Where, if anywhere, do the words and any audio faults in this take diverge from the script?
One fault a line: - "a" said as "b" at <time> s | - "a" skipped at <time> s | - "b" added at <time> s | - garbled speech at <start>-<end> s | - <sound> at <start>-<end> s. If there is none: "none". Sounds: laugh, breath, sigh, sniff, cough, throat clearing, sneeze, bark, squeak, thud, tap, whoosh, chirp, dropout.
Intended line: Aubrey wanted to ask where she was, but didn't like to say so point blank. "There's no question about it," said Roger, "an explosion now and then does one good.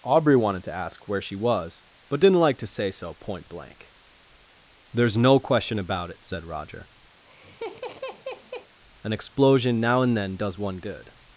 - laugh at 7.2-8.7 s